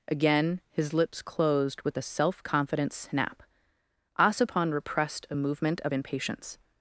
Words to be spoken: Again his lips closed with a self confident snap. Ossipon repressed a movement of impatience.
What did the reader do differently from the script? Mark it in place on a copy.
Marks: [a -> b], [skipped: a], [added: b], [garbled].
Again his lips closed with a self confident snap. Ossipon repressed a movement of impatience.